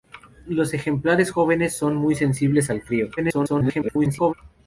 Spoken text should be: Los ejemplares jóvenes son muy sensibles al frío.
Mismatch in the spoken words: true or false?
true